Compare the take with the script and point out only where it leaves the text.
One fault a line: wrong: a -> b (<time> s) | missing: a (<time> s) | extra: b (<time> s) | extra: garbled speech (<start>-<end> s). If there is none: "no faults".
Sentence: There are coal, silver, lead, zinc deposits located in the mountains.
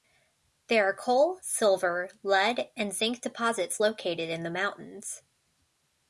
extra: and (2.8 s)